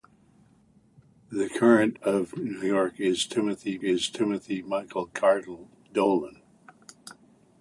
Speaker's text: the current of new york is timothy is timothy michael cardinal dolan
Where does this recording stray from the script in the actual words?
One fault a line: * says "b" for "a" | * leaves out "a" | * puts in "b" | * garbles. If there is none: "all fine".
all fine